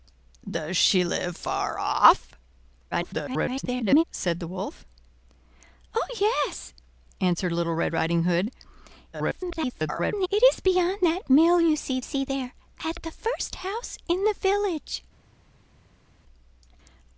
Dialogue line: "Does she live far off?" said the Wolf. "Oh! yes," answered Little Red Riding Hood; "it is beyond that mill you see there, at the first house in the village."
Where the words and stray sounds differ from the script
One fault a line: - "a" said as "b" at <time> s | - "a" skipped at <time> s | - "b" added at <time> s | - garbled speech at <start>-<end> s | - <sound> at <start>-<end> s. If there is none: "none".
- garbled speech at 2.9-4.0 s
- garbled speech at 9.1-10.3 s
- "see" added at 12.0 s